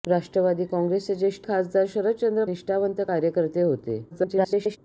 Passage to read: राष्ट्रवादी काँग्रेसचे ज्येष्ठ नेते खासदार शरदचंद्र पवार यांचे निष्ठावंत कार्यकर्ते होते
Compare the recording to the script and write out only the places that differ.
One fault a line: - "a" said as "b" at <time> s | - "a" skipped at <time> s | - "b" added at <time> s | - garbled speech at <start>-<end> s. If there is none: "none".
- "नेते" skipped at 1.5 s
- "पवार यांचे" skipped at 2.4 s
- garbled speech at 4.1-4.8 s